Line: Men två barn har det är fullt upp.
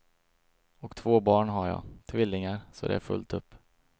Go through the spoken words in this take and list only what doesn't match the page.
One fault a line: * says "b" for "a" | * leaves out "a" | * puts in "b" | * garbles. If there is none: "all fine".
* says "Och" for "Men"
* puts in "jag tvillingar så"